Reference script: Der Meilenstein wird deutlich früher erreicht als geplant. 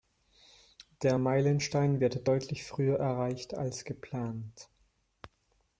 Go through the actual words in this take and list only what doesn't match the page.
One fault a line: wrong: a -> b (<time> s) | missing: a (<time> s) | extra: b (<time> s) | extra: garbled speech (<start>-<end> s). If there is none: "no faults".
no faults